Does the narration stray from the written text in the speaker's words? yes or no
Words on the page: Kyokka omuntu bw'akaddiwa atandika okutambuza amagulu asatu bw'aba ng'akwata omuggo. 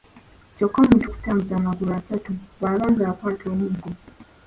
yes